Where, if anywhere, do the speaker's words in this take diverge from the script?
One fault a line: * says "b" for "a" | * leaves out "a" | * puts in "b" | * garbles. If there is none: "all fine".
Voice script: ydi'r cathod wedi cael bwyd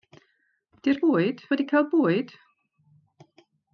* says "bwyd" for "cathod"